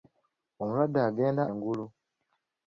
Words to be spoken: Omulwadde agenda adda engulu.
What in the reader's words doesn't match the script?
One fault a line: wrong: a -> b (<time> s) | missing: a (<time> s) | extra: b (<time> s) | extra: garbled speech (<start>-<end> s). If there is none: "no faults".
missing: adda (1.4 s)